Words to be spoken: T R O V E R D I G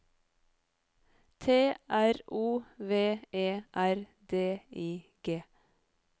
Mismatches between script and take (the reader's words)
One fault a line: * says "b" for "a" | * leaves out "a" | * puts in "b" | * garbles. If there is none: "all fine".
all fine